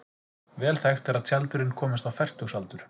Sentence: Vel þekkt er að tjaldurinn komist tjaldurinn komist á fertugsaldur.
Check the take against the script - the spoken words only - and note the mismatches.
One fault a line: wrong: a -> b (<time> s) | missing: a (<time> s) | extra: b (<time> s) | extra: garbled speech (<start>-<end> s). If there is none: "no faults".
missing: tjaldurinn komist (2.1 s)